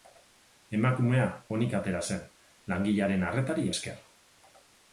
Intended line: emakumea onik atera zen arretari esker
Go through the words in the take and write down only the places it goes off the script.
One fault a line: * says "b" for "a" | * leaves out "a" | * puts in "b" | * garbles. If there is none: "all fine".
* puts in "langilearen"